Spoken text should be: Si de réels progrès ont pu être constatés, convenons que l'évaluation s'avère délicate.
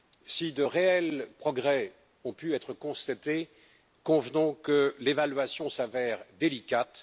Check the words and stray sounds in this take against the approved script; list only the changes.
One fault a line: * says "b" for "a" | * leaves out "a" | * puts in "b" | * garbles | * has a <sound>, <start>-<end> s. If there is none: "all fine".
all fine